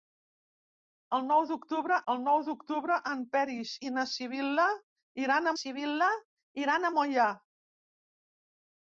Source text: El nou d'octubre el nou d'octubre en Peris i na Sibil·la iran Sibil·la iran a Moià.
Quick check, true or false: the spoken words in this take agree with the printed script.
true